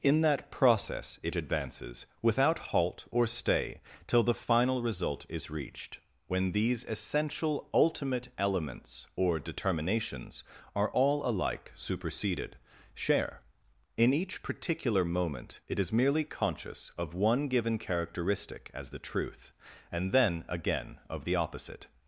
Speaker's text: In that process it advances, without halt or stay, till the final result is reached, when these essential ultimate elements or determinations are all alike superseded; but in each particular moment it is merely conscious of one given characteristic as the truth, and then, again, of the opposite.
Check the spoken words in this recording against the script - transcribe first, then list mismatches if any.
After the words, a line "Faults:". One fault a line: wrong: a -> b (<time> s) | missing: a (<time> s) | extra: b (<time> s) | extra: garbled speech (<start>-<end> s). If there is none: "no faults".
In that process it advances, without halt or stay, till the final result is reached, when these essential ultimate elements or determinations are all alike superseded; share in each particular moment it is merely conscious of one given characteristic as the truth, and then, again, of the opposite.
Faults:
wrong: but -> share (12.9 s)